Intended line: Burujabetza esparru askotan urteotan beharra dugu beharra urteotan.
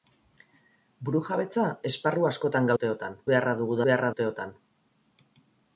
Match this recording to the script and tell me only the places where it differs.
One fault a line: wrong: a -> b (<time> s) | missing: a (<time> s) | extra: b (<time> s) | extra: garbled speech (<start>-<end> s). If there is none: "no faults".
no faults